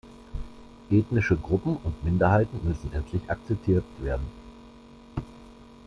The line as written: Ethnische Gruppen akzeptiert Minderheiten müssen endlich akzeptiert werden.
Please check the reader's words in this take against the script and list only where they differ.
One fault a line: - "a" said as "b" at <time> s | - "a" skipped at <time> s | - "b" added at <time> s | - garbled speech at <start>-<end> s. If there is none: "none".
- "akzeptiert" said as "und" at 1.8 s